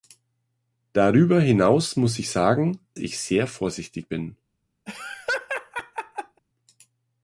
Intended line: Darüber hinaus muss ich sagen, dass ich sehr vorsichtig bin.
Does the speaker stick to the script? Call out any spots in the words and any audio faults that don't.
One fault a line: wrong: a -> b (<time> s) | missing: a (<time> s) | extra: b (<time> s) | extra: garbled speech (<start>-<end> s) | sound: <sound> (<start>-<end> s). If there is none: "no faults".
missing: dass (2.8 s)
sound: laugh (4.9-6.4 s)